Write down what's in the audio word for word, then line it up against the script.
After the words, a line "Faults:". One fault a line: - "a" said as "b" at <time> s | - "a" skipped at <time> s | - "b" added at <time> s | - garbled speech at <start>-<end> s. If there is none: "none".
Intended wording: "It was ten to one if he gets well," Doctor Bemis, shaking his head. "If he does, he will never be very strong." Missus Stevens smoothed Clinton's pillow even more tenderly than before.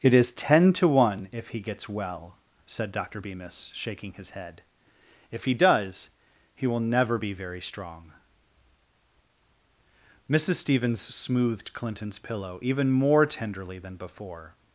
"It is ten to one if he gets well," said Doctor Bemis, shaking his head. "If he does, he will never be very strong." Missus Stevens smoothed Clinton's pillow even more tenderly than before.
Faults:
- "was" said as "is" at 0.1 s
- "said" added at 2.6 s